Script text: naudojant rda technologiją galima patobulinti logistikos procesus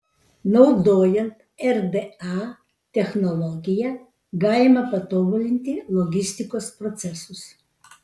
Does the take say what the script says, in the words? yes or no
yes